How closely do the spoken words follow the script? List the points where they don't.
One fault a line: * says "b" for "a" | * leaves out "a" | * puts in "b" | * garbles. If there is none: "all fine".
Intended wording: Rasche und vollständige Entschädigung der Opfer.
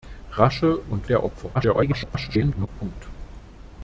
* leaves out "vollständige Entschädigung"
* garbles